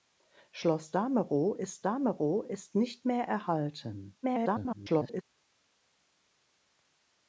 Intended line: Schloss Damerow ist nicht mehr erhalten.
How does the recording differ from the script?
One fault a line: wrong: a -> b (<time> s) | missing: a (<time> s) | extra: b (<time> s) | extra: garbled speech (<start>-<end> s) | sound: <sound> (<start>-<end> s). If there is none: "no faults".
extra: Damerow ist (1.8 s)
extra: garbled speech (4.2-5.2 s)